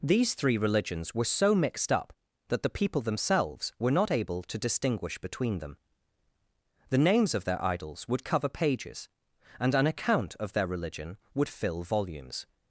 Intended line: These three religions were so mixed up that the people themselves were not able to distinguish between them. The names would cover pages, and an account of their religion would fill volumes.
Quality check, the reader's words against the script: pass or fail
fail